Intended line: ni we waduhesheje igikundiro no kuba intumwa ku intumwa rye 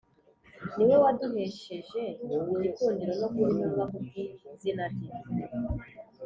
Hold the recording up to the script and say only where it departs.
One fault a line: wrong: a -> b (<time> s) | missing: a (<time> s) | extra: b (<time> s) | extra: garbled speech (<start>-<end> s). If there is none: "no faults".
wrong: intumwa -> bw'izina (4.0 s)